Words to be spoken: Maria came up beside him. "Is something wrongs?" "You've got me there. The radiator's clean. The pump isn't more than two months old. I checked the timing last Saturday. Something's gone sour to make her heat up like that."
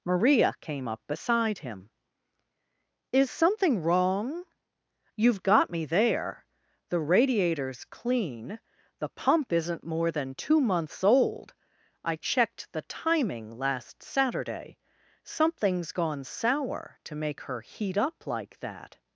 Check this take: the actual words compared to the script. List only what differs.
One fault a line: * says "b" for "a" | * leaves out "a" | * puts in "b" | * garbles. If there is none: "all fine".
* says "wrong" for "wrongs"